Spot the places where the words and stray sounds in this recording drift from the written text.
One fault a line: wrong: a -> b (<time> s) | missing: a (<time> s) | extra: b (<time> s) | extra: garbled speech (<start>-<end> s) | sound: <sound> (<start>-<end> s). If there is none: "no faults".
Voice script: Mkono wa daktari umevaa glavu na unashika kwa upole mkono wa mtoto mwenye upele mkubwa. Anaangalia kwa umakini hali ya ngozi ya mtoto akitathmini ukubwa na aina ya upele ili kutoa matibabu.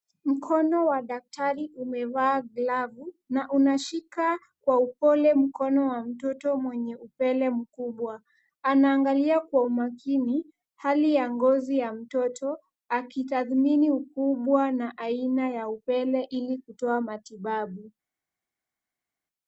no faults